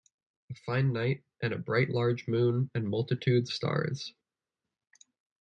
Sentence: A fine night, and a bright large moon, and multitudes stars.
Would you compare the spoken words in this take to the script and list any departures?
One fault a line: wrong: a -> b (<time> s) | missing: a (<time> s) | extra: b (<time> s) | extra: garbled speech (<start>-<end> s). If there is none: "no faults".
no faults